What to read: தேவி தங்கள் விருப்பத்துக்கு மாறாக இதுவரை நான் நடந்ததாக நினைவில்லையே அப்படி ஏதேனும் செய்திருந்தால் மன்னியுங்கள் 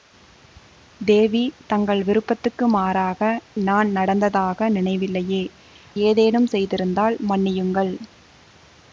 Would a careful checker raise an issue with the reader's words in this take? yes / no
yes